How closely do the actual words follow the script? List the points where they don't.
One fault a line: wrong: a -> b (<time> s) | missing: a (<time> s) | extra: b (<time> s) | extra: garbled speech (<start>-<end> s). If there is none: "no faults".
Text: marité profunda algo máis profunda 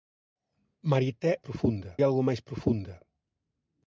no faults